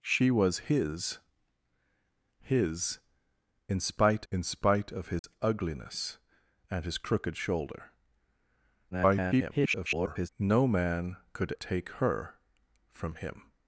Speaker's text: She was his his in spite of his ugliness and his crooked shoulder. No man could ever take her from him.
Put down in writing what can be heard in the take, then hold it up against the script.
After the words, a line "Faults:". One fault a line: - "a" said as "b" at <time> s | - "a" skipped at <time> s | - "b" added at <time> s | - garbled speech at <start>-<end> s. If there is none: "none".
She was his his in spite in spite of his ugliness and his crooked shoulder. [garbled] No man could take her from him.
Faults:
- "in spite" added at 4.3 s
- garbled speech at 8.9-10.3 s
- "ever" skipped at 11.5 s